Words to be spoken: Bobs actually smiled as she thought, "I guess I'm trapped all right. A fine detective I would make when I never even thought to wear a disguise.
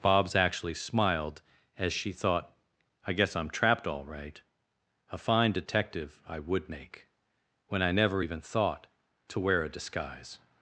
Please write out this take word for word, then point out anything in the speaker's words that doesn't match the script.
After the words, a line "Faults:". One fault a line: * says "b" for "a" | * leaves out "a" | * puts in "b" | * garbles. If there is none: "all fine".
Bobs actually smiled as she thought, "I guess I'm trapped all right. A fine detective I would make when I never even thought to wear a disguise.
Faults:
all fine